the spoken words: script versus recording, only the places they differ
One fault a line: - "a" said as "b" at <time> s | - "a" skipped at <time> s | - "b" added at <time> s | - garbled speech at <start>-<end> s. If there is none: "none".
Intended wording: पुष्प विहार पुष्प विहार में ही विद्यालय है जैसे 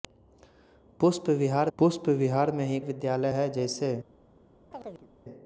none